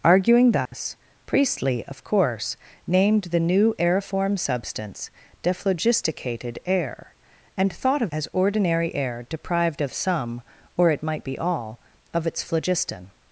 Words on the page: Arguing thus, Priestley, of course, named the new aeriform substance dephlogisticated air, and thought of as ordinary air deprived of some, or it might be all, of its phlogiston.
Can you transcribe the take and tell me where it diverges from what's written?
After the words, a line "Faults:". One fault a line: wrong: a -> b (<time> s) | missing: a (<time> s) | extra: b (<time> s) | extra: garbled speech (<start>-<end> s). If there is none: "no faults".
Arguing thus, Priestley, of course, named the new aeriform substance dephlogisticated air, and thought of as ordinary air deprived of some, or it might be all, of its phlogiston.
Faults:
no faults